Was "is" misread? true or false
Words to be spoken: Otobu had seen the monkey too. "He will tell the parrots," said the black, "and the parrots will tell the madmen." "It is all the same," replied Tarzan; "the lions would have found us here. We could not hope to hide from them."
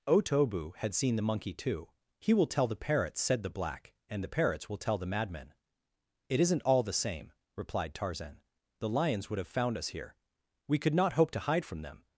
true